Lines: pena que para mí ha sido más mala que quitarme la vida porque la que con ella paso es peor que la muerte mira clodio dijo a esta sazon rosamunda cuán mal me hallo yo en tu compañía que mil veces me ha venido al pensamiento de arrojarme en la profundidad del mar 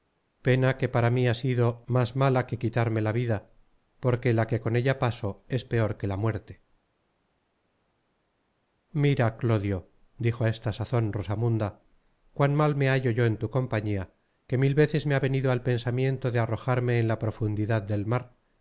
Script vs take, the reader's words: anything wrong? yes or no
no